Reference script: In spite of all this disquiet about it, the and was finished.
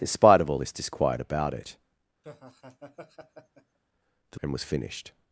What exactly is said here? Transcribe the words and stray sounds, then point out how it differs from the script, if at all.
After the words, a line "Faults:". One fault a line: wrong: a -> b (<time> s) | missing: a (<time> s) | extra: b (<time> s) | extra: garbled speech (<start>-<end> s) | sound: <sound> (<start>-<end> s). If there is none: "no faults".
In spite of all this disquiet about it, the and was finished.
Faults:
sound: laugh (2.2-3.8 s)